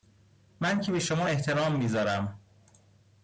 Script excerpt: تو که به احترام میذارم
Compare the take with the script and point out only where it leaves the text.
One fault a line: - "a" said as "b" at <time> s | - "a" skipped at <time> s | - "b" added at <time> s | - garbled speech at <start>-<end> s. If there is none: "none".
- "تو" said as "من" at 0.6 s
- "شما" added at 1.0 s